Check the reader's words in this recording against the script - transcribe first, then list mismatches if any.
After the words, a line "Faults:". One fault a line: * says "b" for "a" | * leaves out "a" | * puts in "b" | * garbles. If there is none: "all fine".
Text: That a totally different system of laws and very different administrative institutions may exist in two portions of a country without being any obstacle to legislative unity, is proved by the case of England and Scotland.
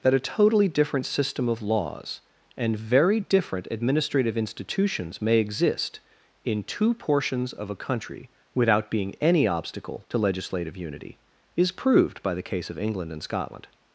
That a totally different system of laws and very different administrative institutions may exist in two portions of a country without being any obstacle to legislative unity, is proved by the case of England and Scotland.
Faults:
all fine